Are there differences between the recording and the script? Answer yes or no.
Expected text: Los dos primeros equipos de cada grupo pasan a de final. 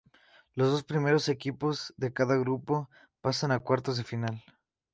yes